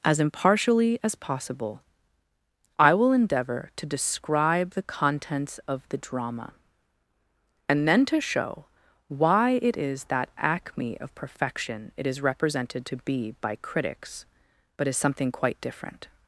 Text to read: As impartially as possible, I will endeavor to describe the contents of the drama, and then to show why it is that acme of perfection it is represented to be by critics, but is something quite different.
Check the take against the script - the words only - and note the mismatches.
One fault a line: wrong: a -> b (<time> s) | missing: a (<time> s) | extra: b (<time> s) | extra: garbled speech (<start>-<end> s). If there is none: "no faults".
no faults